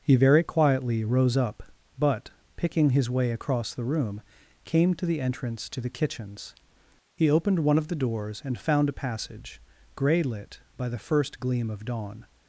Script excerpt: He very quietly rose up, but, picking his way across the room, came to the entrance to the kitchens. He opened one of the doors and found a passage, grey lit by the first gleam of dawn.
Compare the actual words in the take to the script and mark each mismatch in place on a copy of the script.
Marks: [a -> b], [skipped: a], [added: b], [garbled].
He very quietly rose up, but, picking his way across the room, came to the entrance to the kitchens. He opened one of the doors and found a passage, grey lit by the first gleam of dawn.